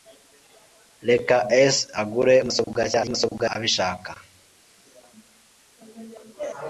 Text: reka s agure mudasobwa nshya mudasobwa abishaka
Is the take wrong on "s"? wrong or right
right